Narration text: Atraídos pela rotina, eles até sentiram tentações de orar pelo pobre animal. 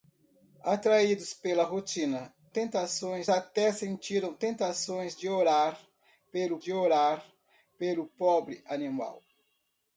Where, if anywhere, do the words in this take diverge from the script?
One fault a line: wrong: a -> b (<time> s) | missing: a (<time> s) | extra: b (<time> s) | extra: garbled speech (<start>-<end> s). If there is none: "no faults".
wrong: eles -> tentações (2.5 s)
extra: de orar pelo (6.6 s)